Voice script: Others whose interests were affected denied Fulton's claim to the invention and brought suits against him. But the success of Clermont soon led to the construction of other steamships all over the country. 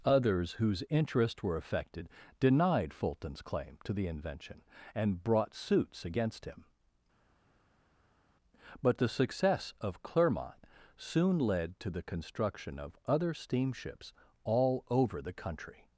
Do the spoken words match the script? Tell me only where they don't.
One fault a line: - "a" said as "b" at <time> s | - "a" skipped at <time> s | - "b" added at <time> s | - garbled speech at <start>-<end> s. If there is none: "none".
none